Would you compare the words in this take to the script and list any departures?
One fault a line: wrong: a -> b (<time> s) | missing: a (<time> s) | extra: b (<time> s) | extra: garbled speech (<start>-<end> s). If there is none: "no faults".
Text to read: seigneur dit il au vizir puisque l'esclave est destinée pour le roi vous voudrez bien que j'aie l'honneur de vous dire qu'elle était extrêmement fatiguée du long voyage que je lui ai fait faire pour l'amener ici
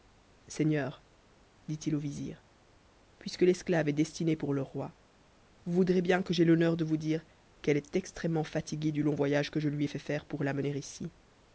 wrong: était -> est (7.8 s)